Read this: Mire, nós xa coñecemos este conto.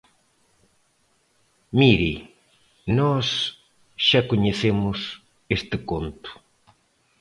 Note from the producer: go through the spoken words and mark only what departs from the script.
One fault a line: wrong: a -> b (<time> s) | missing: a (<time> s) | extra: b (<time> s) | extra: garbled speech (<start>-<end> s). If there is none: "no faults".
no faults